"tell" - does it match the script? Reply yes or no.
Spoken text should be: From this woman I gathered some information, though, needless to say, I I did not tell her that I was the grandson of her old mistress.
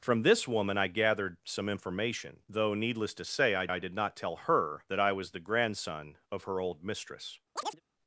yes